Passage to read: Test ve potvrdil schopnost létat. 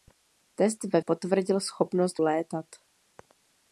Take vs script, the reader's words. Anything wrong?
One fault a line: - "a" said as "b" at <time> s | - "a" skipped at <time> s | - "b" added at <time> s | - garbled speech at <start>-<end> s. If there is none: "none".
none